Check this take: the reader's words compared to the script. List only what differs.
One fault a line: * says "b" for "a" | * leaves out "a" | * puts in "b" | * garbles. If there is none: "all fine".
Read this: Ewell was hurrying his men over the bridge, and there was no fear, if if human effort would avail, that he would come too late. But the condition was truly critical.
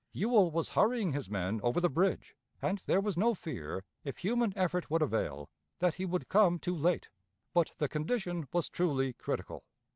* leaves out "if"